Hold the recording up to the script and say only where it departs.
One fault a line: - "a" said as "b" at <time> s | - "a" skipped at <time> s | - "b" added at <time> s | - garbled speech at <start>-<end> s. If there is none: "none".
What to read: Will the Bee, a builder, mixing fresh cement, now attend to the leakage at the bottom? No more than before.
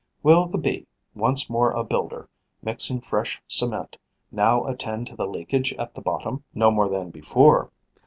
- "once more" added at 1.1 s